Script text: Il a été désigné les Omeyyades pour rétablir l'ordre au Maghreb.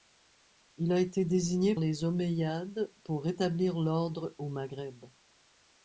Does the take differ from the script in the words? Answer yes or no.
no